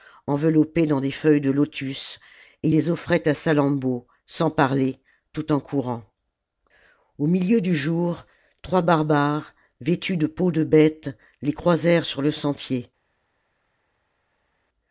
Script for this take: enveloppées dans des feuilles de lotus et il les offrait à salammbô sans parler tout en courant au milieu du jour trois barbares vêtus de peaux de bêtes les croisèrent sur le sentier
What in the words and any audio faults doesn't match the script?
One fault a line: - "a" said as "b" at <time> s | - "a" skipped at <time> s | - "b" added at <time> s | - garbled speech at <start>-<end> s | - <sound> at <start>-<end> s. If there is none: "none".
- "il" skipped at 2.7 s